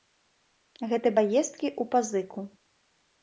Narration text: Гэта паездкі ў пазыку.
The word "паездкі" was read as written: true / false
true